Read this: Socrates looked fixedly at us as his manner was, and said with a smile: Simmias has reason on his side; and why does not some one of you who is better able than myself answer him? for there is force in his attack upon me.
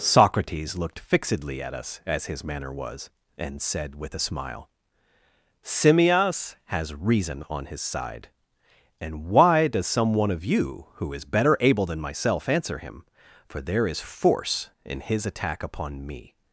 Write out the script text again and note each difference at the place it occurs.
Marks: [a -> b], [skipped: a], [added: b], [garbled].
Socrates looked fixedly at us as his manner was, and said with a smile: Simmias has reason on his side; and why does [skipped: not] some one of you who is better able than myself answer him? for there is force in his attack upon me.